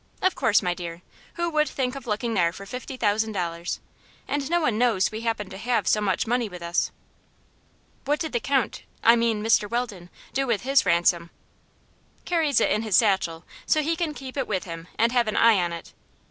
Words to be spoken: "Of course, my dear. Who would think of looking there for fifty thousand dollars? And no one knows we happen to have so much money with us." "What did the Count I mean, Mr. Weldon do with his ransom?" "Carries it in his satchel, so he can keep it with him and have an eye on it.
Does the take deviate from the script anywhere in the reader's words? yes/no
no